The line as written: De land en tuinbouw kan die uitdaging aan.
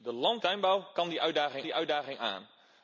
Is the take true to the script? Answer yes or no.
no